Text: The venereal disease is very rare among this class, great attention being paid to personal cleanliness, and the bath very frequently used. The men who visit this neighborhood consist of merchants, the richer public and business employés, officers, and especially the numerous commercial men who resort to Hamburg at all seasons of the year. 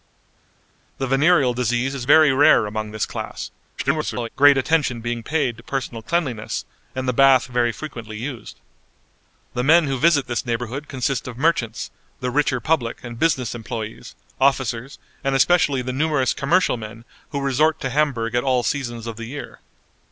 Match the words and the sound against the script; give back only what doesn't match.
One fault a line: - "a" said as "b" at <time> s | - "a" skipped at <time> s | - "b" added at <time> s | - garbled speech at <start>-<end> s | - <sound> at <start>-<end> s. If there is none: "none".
- garbled speech at 3.8-4.3 s